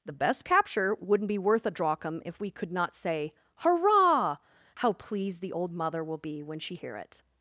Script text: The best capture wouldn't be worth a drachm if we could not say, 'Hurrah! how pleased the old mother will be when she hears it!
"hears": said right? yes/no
no